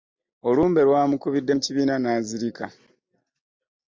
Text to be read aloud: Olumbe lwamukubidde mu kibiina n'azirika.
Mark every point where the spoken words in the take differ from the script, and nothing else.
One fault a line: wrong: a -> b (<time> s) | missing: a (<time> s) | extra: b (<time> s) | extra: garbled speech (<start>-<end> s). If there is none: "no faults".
no faults